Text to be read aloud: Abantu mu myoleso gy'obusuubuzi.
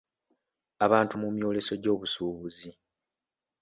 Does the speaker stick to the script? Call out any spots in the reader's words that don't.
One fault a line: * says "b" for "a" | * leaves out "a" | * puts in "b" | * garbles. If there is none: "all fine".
all fine